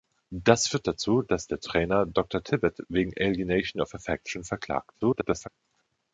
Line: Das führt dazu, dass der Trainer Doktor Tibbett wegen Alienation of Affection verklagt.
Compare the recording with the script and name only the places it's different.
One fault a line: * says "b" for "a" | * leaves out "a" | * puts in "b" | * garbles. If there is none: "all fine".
* garbles